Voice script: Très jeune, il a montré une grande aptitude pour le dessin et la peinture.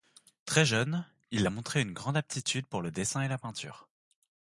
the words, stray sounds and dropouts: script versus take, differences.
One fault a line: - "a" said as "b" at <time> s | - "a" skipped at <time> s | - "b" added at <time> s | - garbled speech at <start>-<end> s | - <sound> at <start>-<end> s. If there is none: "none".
none